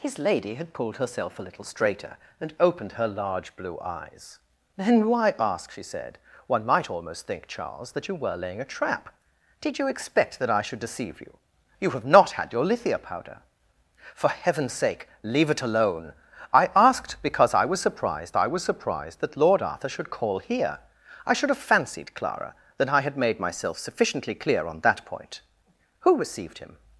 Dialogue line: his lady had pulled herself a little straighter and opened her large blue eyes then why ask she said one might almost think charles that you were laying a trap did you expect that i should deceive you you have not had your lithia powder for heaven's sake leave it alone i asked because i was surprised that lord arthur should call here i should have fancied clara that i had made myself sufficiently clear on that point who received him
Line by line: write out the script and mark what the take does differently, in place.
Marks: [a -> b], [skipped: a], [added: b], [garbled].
his lady had pulled herself a little straighter and opened her large blue eyes then why ask she said one might almost think charles that you were laying a trap did you expect that i should deceive you you have not had your lithia powder for heaven's sake leave it alone i asked because i was surprised [added: i was surprised] that lord arthur should call here i should have fancied clara that i had made myself sufficiently clear on that point who received him